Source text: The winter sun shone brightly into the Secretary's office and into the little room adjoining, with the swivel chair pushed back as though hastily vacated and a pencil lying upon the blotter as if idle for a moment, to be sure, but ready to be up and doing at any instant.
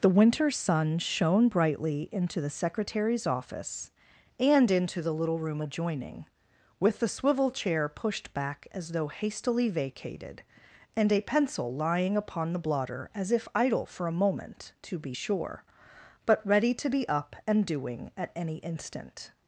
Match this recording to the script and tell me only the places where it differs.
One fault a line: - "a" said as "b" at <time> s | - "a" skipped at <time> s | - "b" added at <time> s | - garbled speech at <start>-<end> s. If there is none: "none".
none